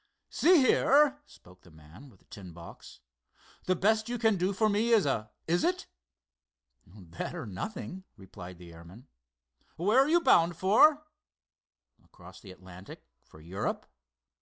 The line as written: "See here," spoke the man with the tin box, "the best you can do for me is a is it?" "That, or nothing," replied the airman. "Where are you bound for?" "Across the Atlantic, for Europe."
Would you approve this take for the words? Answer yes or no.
yes